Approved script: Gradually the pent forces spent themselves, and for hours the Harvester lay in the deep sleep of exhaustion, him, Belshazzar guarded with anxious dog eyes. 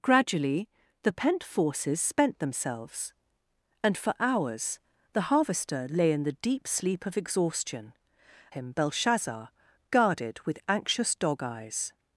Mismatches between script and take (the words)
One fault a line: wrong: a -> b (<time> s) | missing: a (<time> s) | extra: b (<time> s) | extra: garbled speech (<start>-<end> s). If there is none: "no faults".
no faults